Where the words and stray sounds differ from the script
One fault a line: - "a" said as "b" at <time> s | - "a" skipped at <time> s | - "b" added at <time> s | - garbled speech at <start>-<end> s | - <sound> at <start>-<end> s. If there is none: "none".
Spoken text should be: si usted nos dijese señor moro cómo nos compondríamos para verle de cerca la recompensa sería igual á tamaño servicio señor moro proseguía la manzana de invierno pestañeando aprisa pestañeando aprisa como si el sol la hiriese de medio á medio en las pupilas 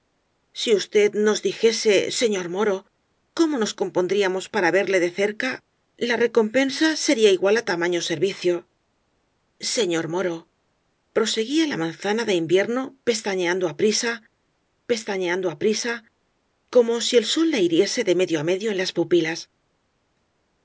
none